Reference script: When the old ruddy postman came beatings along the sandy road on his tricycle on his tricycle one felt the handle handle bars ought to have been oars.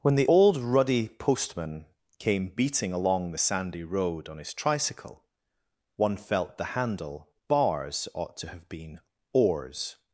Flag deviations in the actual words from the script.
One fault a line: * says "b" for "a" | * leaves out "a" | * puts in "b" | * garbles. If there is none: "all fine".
* says "beating" for "beatings"
* leaves out "on his tricycle"
* leaves out "handle"